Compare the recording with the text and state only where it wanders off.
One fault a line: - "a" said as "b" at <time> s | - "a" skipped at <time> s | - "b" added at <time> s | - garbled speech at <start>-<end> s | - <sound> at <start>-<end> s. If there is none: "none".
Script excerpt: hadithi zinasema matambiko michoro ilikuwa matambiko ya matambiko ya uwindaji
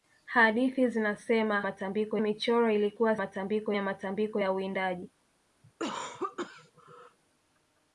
- cough at 5.6-7.2 s